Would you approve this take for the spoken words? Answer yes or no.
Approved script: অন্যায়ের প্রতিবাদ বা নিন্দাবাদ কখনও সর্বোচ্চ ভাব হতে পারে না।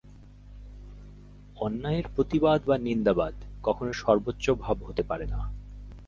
yes